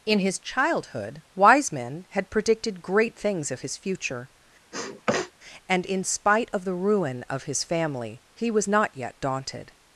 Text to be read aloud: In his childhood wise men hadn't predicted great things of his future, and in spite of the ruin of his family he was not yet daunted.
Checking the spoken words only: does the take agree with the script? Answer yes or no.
no